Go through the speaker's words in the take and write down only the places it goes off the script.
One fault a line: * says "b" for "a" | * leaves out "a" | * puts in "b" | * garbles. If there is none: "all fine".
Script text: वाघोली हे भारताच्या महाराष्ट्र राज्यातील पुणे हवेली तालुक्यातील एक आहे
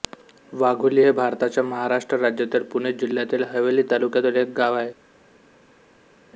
* puts in "जिल्ह्यातील"
* puts in "गाव"